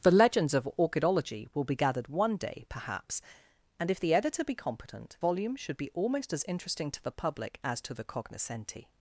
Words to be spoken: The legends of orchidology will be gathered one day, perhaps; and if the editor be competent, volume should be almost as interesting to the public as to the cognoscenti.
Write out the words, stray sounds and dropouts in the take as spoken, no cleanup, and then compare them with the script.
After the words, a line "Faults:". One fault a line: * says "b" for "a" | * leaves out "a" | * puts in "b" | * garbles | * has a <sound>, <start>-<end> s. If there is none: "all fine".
The legends of orchidology will be gathered one day, perhaps; and if the editor be competent, volume should be almost as interesting to the public as to the cognoscenti.
Faults:
all fine